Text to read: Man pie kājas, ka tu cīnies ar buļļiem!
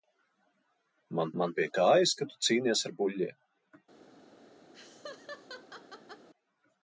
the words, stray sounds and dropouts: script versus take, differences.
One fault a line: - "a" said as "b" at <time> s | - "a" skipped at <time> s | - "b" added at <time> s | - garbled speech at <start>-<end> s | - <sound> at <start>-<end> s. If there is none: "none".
- "man" added at 1.4 s
- laugh at 4.7-6.3 s